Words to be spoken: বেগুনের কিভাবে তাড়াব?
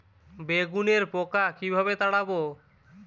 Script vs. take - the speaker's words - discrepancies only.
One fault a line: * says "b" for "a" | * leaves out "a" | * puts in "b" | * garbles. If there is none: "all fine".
* puts in "পোকা"